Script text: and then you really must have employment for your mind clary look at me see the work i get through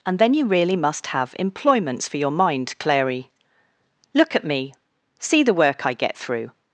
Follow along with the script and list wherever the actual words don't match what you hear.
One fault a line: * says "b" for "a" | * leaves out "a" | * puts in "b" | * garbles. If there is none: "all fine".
* says "employments" for "employment"